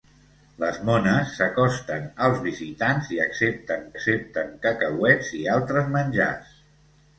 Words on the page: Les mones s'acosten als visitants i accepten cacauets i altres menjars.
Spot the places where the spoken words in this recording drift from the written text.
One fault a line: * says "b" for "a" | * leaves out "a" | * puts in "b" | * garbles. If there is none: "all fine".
* puts in "accepten"